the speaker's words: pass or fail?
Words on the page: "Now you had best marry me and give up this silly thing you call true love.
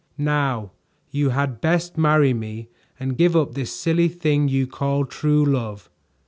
pass